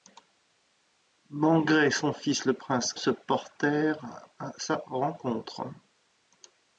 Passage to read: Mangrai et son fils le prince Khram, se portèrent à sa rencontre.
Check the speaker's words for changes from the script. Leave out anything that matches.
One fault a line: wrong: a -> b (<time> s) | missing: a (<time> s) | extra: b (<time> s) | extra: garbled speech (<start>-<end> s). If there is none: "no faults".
missing: Khram (2.9 s)